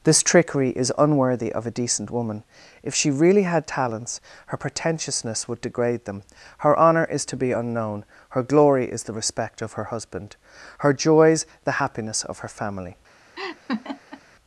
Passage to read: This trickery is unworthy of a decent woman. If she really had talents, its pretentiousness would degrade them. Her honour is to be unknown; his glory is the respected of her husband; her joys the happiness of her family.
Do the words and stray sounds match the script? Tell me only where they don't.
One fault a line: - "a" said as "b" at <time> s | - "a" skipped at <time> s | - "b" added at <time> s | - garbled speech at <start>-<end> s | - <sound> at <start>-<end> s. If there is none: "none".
- "its" said as "her" at 4.5 s
- "his" said as "her" at 8.3 s
- "respected" said as "respect" at 9.1 s
- laugh at 13.4-14.2 s